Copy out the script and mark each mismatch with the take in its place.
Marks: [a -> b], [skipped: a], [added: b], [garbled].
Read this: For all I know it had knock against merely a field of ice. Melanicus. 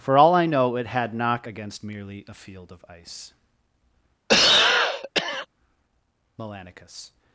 For all I know it had knock against merely a field of ice. Melanicus.